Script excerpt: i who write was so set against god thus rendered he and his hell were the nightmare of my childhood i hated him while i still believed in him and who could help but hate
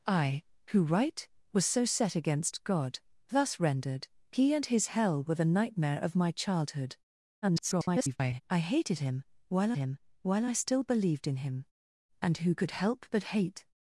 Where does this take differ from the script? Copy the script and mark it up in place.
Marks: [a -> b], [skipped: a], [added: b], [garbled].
i who write was so set against god thus rendered he and his hell were the nightmare of my childhood [garbled] i hated him while [added: him while] i still believed in him and who could help but hate